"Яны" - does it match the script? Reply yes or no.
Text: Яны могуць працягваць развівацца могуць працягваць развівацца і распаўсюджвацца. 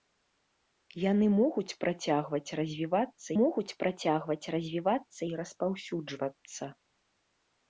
yes